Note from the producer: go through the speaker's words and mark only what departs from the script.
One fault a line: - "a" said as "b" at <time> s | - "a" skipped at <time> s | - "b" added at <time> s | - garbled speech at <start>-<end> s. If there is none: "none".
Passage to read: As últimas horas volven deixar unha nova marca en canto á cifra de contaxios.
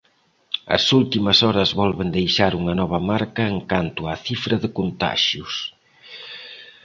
none